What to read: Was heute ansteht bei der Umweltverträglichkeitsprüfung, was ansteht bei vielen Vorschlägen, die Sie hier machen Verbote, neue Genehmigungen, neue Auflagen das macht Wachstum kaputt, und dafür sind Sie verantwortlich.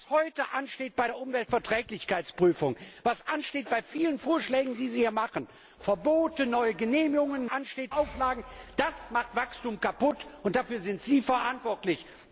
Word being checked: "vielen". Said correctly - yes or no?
yes